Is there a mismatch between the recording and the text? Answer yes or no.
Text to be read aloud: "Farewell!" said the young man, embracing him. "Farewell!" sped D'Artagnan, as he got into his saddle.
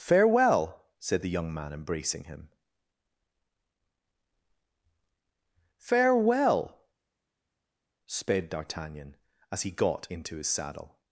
no